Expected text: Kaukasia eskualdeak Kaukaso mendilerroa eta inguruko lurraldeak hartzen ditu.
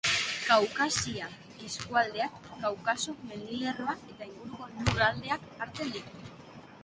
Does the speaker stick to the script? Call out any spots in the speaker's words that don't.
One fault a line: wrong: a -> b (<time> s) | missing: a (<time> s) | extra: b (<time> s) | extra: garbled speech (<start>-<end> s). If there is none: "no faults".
no faults